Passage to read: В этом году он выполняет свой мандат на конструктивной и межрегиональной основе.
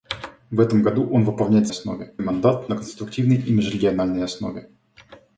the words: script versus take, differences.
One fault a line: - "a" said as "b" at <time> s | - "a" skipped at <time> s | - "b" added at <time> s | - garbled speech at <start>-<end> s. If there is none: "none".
- "свой" said as "основе" at 1.7 s